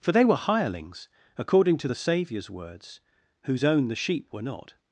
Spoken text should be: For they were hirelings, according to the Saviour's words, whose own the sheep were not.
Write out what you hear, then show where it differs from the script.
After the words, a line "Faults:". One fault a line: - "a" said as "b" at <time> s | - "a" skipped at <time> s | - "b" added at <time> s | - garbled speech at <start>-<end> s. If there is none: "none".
For they were hirelings, according to the Saviour's words, whose own the sheep were not.
Faults:
none